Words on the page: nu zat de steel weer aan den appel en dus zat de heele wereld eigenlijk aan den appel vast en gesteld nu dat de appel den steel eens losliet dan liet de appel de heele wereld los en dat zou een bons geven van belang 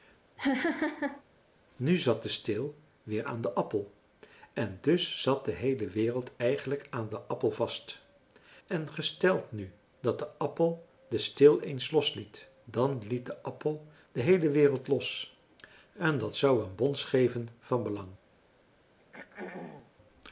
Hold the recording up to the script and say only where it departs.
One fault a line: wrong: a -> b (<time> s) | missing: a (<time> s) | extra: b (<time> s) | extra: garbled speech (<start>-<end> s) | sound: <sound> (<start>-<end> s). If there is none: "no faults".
sound: laugh (0.4-1.2 s)
sound: throat clearing (19.0-19.9 s)